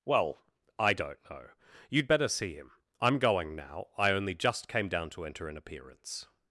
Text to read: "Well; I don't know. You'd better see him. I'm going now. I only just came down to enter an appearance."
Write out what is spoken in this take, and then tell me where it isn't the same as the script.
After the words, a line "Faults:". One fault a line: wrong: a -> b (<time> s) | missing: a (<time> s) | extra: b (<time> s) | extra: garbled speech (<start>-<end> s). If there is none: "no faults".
"Well; I don't know. You'd better see him. I'm going now. I only just came down to enter an appearance."
Faults:
no faults